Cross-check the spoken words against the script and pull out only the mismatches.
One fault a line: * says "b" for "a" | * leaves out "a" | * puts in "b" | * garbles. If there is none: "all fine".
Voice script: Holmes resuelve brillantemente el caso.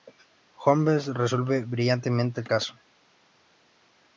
all fine